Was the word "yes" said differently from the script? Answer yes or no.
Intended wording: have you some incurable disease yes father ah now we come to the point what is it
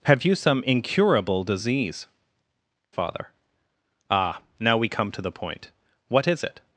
yes